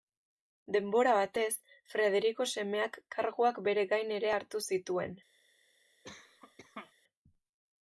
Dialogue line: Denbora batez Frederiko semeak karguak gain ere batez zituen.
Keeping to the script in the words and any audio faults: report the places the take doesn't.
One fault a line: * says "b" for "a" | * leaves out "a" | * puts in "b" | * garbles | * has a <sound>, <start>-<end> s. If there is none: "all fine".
* puts in "bere"
* says "hartu" for "batez"
* has a cough, 6.0-6.9 s